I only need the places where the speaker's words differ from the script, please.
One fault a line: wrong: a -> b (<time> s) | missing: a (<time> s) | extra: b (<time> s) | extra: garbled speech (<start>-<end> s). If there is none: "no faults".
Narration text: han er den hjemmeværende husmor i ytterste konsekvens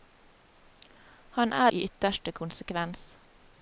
missing: den hjemmeværende husmor (1.7 s)